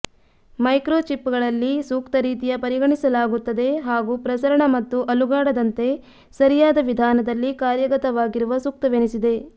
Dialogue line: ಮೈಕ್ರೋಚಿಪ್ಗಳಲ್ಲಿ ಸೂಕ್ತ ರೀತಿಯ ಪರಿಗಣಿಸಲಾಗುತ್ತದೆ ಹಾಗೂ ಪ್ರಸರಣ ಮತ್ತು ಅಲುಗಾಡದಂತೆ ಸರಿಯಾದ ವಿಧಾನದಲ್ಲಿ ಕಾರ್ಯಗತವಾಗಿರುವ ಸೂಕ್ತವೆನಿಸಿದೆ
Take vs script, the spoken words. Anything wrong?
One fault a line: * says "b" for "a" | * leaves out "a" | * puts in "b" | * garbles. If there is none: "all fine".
all fine